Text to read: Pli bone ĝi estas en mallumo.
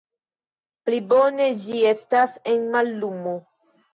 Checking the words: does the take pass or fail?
pass